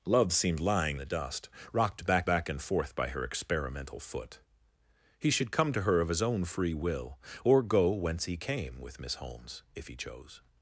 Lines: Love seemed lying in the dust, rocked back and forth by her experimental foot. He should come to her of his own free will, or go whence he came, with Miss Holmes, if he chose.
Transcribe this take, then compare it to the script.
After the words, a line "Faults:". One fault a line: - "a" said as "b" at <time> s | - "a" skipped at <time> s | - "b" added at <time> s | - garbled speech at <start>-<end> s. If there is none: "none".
Love seemed lying the dust, rocked back back and forth by her experimental foot. He should come to her of his own free will, or go whence he came, with Miss Holmes, if he chose.
Faults:
- "in" skipped at 1.0 s
- "back" added at 2.2 s